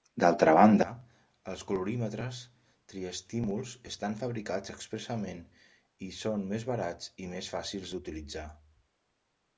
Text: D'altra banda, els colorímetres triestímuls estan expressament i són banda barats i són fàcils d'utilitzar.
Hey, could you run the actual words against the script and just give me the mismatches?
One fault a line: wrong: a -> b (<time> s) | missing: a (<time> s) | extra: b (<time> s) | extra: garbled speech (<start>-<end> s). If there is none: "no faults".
extra: fabricats (4.2 s)
wrong: banda -> més (6.5 s)
wrong: són -> més (7.3 s)